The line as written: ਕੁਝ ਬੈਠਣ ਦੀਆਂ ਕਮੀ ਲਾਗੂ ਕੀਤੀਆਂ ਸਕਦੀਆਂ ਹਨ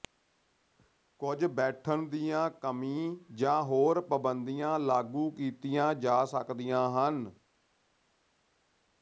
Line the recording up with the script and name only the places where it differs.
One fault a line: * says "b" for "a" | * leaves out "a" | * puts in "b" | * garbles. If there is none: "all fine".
* puts in "ਜਾਂ ਹੋਰ ਪਾਬੰਦੀਆਂ"
* puts in "ਜਾ"